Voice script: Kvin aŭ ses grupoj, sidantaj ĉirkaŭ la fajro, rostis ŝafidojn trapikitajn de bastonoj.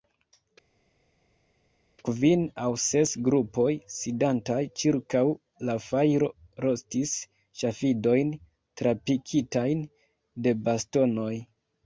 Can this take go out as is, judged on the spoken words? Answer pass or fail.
pass